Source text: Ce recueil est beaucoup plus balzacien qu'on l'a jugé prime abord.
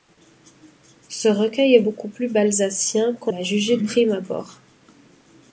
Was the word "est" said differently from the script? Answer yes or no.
no